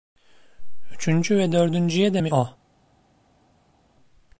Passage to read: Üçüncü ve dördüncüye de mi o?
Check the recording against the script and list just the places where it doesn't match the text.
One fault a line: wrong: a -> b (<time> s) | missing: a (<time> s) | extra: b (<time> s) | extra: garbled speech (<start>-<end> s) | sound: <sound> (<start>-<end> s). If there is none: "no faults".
no faults